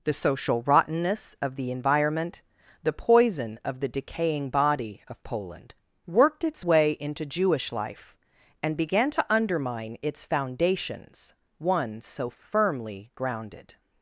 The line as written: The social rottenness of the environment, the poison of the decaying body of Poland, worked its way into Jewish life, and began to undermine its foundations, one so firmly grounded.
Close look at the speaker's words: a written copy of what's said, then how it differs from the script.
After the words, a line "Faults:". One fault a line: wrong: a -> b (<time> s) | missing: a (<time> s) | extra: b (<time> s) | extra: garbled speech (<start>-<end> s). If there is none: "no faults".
The social rottenness of the environment, the poison of the decaying body of Poland, worked its way into Jewish life, and began to undermine its foundations, one so firmly grounded.
Faults:
no faults